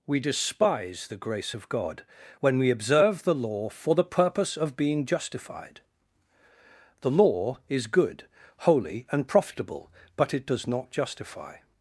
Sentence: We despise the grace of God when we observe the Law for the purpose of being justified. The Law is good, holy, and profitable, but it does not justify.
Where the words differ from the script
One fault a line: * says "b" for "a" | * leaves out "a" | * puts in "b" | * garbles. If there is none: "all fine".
all fine